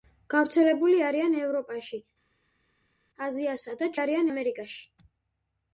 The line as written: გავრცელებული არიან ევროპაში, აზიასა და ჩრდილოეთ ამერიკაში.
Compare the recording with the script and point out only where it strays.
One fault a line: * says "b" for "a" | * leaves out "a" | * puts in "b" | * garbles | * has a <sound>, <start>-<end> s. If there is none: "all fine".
* says "არიან" for "ჩრდილოეთ"